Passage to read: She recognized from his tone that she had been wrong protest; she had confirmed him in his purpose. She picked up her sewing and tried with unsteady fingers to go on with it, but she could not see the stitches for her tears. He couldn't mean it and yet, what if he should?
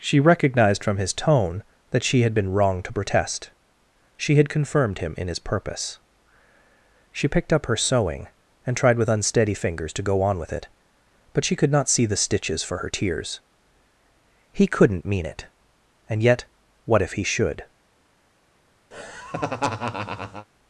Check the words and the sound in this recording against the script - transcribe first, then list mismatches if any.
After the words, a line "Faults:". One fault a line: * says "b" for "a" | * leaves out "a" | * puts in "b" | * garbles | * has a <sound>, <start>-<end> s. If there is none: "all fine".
She recognized from his tone that she had been wrong to protest; she had confirmed him in his purpose. She picked up her sewing and tried with unsteady fingers to go on with it, but she could not see the stitches for her tears. He couldn't mean it and yet, what if he should?
Faults:
* puts in "to"
* has a laugh, 18.9-20.5 s